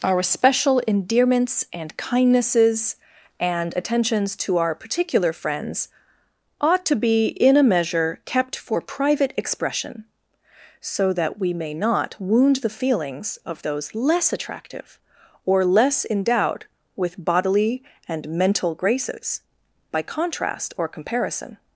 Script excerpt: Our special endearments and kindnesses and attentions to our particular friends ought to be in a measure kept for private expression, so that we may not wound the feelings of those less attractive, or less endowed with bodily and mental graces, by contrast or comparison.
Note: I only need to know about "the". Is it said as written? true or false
true